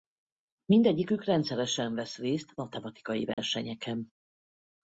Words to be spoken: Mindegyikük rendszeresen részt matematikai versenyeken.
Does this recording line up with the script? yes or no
no